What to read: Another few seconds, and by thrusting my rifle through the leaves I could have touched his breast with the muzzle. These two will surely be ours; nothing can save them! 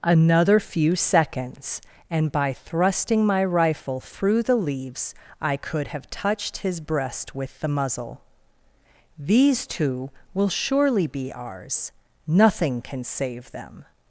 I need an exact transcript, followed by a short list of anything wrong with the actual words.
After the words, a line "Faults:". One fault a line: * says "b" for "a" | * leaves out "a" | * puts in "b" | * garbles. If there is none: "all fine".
Another few seconds, and by thrusting my rifle through the leaves I could have touched his breast with the muzzle. These two will surely be ours; nothing can save them!
Faults:
all fine